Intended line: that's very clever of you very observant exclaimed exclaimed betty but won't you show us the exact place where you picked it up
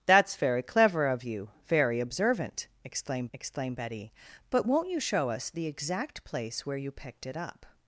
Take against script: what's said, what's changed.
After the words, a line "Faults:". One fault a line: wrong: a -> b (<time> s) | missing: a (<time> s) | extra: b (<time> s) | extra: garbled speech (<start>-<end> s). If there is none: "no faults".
that's very clever of you very observant exclaimed exclaimed betty but won't you show us the exact place where you picked it up
Faults:
no faults